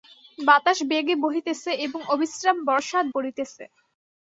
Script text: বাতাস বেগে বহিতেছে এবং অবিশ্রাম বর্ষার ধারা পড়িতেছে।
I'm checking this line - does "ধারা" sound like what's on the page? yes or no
no